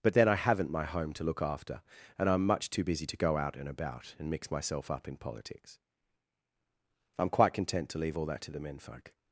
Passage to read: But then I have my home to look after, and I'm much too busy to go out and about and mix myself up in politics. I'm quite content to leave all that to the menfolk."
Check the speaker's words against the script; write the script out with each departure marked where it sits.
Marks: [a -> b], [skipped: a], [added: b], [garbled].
But then I [have -> haven't] my home to look after, and I'm much too busy to go out and about and mix myself up in politics. I'm quite content to leave all that to the menfolk."